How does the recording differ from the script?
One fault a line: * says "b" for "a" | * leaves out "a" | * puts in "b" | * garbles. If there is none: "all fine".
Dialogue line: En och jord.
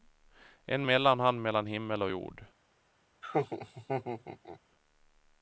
* puts in "mellanhand mellan himmel"